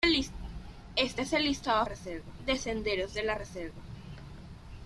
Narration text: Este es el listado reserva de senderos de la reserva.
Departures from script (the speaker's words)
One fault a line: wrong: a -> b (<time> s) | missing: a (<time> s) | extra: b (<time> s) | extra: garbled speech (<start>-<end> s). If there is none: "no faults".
no faults